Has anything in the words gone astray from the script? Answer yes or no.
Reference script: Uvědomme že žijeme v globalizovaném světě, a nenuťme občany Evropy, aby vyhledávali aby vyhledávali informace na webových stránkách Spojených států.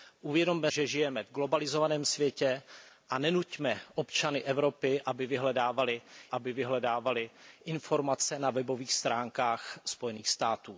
no